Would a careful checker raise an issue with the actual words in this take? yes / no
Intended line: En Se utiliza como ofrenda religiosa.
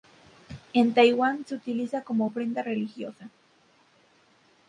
yes